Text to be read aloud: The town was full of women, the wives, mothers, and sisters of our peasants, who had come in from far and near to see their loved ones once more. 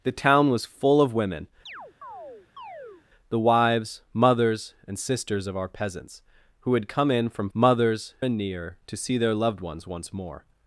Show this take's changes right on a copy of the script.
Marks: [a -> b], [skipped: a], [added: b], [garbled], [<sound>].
The town was full of women, [chirp] the wives, mothers, and sisters of our peasants, who had come in from [far -> mothers] and near to see their loved ones once more.